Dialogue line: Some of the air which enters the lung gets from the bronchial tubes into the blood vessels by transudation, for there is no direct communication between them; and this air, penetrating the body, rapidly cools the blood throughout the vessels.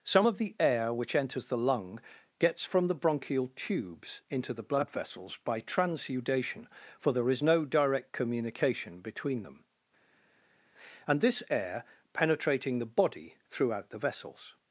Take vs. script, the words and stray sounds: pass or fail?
fail